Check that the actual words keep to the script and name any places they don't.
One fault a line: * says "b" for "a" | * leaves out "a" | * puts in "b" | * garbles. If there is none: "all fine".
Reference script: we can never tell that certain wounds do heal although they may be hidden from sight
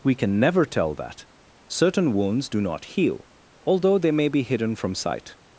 * puts in "not"